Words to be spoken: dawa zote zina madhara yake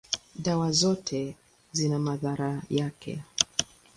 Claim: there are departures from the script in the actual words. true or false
false